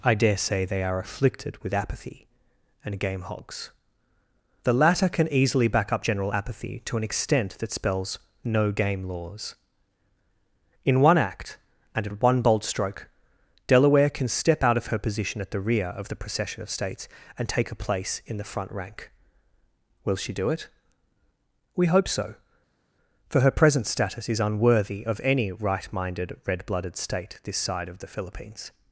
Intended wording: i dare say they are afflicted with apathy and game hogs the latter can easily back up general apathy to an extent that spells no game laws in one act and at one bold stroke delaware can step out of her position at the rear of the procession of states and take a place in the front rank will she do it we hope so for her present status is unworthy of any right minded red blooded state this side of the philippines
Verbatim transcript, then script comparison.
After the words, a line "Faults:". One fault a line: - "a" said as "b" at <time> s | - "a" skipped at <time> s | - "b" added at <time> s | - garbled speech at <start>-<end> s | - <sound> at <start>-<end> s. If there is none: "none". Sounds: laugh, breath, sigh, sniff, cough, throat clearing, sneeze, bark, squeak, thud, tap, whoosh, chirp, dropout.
i dare say they are afflicted with apathy and game hogs the latter can easily back up general apathy to an extent that spells no game laws in one act and at one bold stroke delaware can step out of her position at the rear of the procession of states and take a place in the front rank will she do it we hope so for her present status is unworthy of any right minded red blooded state this side of the philippines
Faults:
none